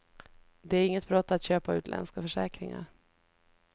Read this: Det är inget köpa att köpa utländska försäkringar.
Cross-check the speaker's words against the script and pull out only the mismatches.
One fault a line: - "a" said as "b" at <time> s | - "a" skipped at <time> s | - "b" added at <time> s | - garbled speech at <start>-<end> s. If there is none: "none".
- "köpa" said as "brott" at 1.1 s